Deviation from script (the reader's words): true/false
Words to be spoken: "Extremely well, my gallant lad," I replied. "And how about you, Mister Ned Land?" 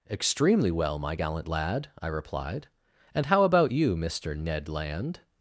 false